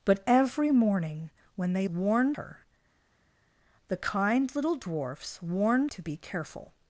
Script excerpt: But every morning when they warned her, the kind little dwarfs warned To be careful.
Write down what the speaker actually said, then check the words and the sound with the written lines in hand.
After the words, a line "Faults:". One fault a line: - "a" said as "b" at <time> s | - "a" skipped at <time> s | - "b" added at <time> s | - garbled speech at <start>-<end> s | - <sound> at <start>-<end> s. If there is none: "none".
But every morning when they warned her, the kind little dwarfs warned To be careful.
Faults:
none